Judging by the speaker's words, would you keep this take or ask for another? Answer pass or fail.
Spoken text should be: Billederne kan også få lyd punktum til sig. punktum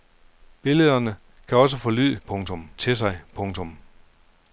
pass